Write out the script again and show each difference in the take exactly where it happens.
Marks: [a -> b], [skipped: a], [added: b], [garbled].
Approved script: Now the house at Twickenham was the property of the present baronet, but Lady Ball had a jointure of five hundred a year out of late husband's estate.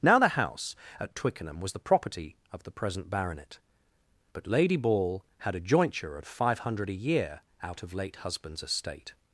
Now the house at Twickenham was the property of the present baronet, but Lady Ball had a jointure of five hundred a year out of late husband's estate.